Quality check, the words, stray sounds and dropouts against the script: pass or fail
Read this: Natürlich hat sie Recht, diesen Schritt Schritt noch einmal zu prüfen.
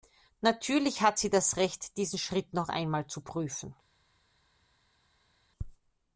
fail